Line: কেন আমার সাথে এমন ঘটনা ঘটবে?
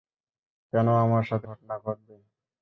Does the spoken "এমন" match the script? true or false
false